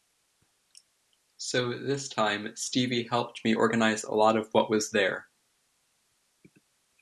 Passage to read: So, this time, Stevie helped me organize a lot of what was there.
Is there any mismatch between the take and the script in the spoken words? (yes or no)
no